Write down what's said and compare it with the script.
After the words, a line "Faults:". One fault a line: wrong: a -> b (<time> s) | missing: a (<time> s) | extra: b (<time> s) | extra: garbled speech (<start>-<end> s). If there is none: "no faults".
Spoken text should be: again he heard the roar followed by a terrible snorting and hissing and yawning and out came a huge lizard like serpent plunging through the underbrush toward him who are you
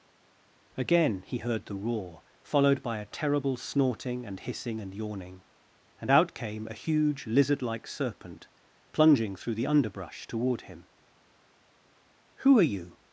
again he heard the roar followed by a terrible snorting and hissing and yawning and out came a huge lizard like serpent plunging through the underbrush toward him who are you
Faults:
no faults